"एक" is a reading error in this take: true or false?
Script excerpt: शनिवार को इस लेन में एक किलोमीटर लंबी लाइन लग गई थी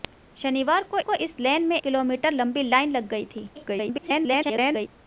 true